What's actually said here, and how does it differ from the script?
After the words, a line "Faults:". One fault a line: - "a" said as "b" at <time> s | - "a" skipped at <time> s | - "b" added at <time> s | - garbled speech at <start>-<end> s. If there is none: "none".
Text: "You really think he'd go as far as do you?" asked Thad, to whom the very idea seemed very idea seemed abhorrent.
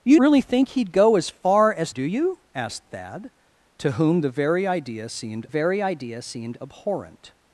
"You really think he'd go as far as do you?" asked Thad, to whom the very idea seemed very idea seemed abhorrent.
Faults:
none